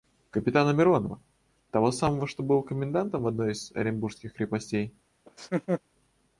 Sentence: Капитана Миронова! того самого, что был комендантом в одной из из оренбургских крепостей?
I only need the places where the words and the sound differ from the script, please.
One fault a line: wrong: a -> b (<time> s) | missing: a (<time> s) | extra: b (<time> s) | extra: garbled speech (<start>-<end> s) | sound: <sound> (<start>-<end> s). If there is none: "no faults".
missing: из (3.7 s)
sound: laugh (5.3-5.8 s)